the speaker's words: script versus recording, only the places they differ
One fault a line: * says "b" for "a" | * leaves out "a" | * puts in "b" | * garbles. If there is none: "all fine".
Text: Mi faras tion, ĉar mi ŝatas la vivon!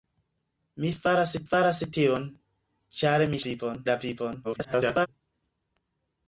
* puts in "faras"
* says "vivon" for "ŝatas"
* garbles